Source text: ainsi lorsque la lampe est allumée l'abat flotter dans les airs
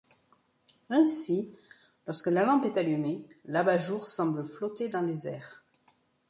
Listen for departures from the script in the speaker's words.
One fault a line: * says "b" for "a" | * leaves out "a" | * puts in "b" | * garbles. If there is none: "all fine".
* puts in "jour semble"